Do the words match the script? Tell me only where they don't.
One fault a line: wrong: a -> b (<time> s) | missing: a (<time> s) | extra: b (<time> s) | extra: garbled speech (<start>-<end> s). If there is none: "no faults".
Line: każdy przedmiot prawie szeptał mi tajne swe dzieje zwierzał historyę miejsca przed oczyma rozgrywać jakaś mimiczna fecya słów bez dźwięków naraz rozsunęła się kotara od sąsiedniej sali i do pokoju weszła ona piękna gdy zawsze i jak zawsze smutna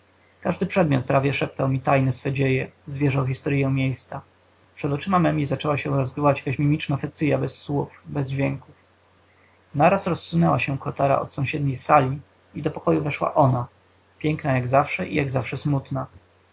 extra: memi zaczęła się (5.2 s)
extra: bez (7.4 s)
wrong: gdy -> jak (14.5 s)